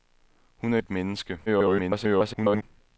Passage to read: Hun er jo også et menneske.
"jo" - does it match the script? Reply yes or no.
no